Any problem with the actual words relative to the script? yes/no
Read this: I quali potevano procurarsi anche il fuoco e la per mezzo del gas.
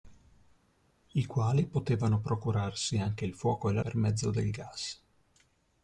no